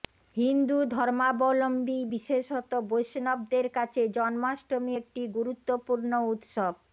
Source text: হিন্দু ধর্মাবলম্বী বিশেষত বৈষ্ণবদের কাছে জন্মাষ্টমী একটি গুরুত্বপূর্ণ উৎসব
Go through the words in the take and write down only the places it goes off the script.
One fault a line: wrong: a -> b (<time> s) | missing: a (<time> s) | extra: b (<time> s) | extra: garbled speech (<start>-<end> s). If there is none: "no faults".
no faults